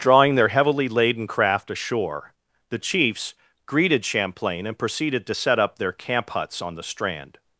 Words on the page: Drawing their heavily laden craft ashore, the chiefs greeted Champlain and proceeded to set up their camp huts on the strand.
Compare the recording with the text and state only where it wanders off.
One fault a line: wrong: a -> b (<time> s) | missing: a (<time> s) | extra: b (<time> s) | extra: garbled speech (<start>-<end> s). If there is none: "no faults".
no faults